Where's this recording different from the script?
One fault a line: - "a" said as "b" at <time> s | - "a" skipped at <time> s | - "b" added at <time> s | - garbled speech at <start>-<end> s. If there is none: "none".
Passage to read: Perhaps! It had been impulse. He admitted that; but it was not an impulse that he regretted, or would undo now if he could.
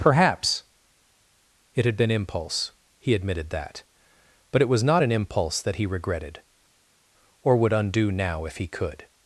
none